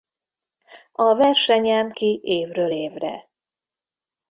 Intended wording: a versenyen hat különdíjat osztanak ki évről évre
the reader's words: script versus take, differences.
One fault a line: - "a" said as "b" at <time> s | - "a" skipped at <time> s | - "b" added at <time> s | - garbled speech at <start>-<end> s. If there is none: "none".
- "hat különdíjat osztanak" skipped at 1.9 s